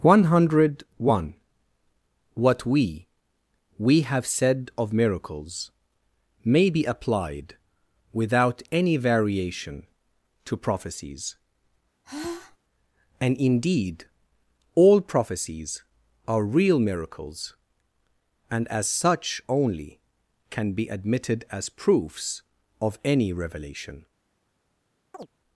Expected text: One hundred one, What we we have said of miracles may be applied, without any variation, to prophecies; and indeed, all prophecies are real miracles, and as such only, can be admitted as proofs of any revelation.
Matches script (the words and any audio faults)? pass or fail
fail